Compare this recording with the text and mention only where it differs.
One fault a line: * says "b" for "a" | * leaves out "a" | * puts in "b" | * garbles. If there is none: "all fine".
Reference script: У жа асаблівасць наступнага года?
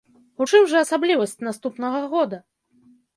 * puts in "чым"